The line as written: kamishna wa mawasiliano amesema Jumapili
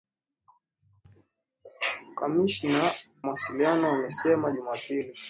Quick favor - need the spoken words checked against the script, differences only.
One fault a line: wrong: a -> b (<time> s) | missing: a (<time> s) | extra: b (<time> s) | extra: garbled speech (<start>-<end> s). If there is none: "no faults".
missing: wa (2.9 s)